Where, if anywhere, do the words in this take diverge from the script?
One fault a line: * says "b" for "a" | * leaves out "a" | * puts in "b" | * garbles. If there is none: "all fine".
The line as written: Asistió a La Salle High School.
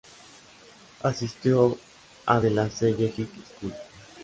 * puts in "De"